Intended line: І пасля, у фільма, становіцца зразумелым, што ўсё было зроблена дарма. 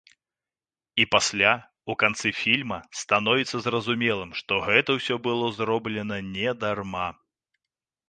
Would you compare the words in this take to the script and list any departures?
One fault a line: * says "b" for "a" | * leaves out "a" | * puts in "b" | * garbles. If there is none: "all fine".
* puts in "канцы"
* puts in "гэта"
* puts in "не"